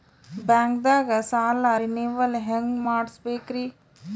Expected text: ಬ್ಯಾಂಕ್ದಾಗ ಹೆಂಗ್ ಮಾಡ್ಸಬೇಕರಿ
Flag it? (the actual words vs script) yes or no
yes